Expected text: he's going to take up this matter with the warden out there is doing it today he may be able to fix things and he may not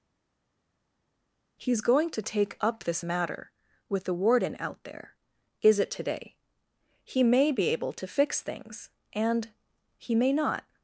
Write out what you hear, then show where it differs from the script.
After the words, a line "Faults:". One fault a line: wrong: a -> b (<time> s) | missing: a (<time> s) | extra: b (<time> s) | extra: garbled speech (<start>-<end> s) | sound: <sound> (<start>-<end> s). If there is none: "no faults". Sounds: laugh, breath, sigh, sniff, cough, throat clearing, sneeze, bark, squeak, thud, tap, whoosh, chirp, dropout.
he's going to take up this matter with the warden out there is it today he may be able to fix things and he may not
Faults:
missing: doing (5.8 s)